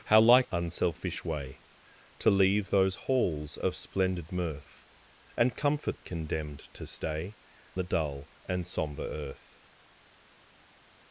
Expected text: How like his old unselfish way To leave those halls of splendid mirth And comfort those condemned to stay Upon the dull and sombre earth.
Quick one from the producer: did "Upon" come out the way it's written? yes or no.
no